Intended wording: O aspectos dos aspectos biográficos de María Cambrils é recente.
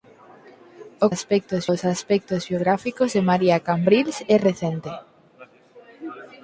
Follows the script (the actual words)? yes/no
yes